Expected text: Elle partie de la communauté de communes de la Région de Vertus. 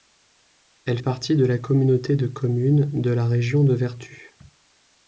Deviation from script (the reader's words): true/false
false